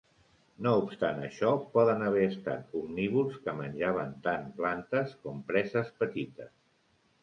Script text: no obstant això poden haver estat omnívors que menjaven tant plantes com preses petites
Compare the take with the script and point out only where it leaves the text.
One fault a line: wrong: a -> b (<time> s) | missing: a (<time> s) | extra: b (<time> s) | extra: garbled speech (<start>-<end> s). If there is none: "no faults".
no faults